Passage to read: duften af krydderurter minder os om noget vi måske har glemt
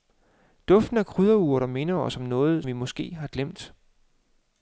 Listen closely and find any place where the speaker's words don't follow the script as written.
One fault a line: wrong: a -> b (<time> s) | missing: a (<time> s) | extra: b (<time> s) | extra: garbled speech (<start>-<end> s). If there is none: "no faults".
no faults